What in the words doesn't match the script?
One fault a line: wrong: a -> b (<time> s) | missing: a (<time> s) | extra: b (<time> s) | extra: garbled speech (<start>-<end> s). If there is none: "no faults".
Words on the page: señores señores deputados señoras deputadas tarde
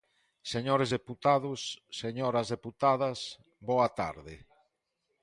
missing: señores (0.9 s)
extra: boa (3.7 s)